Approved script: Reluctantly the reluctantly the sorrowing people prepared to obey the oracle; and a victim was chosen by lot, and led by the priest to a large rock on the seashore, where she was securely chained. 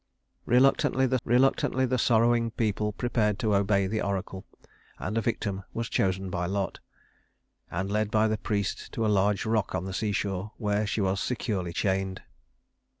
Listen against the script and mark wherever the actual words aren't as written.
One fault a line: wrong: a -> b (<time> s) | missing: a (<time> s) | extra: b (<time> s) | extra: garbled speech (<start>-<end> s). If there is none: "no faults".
no faults